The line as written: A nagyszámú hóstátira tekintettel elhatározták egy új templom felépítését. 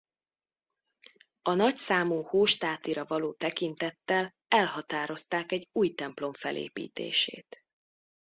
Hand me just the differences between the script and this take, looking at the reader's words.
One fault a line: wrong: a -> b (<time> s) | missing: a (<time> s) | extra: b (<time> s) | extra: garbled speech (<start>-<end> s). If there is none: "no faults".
extra: való (3.0 s)